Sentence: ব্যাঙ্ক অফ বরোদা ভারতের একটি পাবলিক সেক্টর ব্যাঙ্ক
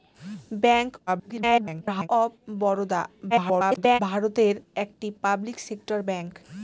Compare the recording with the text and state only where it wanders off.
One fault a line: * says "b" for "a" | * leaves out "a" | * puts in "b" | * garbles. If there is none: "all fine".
* garbles
* garbles